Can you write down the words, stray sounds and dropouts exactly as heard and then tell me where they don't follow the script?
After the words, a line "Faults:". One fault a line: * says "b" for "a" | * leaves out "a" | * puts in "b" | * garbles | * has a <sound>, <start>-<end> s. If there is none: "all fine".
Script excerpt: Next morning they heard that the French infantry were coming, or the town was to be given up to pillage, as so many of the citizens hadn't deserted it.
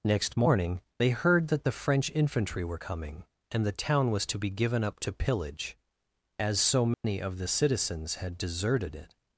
Next morning they heard that the French infantry were coming, and the town was to be given up to pillage, as so many of the citizens had deserted it.
Faults:
* says "and" for "or"
* has a dropout, 6.9-7.0 s
* says "had" for "hadn't"